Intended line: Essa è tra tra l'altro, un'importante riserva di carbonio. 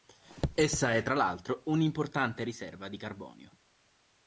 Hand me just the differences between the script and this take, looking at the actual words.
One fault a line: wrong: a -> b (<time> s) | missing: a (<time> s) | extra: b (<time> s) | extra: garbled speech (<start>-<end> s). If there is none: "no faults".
missing: tra (1.1 s)